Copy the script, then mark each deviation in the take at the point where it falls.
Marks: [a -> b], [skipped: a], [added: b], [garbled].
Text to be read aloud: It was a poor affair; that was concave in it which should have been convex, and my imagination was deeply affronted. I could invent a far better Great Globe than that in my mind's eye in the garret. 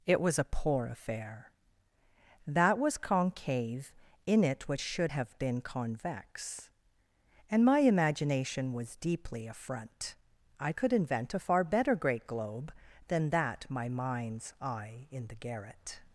It was a poor affair; that was concave in it which should have been convex, and my imagination was deeply [affronted. -> affront] I could invent a far better Great Globe than that [skipped: in] my mind's eye in the garret.